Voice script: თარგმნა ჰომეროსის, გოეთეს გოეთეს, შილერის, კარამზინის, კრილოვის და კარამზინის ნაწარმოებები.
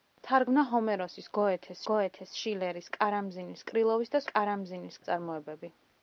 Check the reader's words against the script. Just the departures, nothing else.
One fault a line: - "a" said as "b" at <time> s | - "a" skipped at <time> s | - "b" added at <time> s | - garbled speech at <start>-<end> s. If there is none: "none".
none